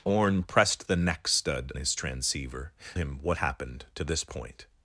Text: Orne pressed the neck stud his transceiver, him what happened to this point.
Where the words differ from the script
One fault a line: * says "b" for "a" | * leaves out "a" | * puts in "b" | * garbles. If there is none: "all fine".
all fine